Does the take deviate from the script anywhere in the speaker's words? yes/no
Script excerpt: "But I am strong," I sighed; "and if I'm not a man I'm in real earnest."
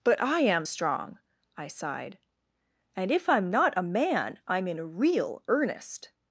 no